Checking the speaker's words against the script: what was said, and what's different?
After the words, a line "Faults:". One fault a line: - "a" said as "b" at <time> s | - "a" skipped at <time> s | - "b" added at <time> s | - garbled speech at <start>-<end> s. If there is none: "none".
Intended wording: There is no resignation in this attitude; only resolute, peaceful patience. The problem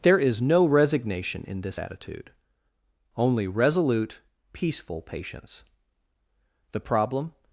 There is no resignation in this attitude; only resolute, peaceful patience. The problem
Faults:
none